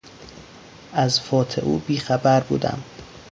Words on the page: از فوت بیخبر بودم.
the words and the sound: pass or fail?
fail